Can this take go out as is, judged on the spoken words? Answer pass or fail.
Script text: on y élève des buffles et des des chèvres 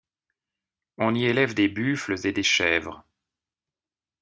fail